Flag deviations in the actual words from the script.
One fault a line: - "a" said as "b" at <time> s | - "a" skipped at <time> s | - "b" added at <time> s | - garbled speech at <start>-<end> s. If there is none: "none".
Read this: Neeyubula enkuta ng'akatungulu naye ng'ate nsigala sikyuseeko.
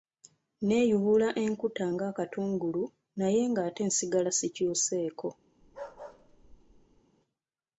none